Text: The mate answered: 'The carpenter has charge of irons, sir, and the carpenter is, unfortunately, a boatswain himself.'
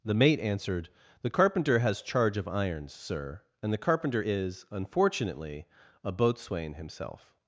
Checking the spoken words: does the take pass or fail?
pass